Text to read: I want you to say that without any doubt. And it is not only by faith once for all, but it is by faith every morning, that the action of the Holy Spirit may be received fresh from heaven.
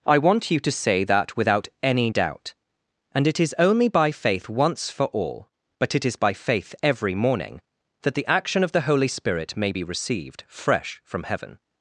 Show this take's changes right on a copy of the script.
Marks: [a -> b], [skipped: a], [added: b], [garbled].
I want you to say that without any doubt. And it is [skipped: not] only by faith once for all, but it is by faith every morning, that the action of the Holy Spirit may be received fresh from heaven.